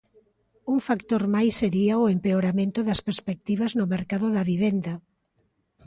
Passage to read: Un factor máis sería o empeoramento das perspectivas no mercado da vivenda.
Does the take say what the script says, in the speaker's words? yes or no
yes